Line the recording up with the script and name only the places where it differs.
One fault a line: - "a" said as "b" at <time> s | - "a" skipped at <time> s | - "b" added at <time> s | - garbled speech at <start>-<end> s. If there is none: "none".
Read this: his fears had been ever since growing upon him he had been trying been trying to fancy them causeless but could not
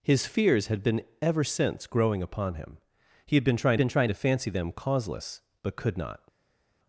none